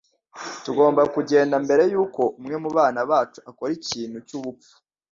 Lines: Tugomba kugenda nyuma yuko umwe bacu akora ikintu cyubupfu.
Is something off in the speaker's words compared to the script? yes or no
yes